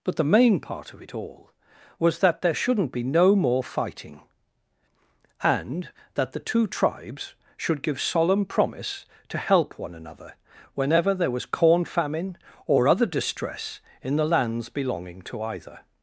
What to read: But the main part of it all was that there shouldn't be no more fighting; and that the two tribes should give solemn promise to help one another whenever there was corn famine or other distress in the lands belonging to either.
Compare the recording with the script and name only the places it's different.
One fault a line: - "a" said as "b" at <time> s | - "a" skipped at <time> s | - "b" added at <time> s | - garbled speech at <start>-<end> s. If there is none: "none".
none